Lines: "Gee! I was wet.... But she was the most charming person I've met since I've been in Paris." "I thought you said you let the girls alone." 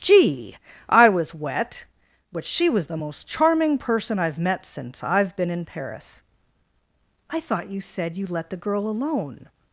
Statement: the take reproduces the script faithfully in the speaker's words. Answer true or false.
false